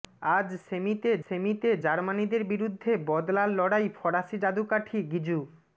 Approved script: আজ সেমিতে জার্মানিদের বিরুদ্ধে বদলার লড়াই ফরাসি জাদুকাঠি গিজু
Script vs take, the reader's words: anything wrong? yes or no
yes